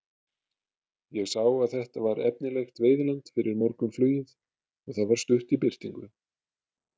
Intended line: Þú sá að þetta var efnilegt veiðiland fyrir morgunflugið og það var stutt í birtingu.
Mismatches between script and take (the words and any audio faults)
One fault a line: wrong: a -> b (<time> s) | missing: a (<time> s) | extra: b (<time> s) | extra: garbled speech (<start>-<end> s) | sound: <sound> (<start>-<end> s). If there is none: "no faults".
wrong: Þú -> Ég (1.2 s)